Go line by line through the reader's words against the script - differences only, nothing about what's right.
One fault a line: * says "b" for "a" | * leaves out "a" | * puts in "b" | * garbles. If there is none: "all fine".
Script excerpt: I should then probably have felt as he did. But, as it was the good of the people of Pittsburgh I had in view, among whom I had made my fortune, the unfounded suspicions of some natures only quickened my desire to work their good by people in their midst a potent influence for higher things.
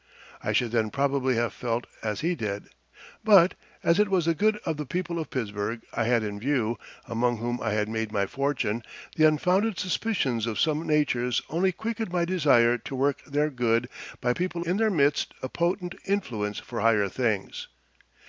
all fine